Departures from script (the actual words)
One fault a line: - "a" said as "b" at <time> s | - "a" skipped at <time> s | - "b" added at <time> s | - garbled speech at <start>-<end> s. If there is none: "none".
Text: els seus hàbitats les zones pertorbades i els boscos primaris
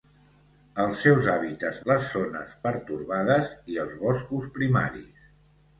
none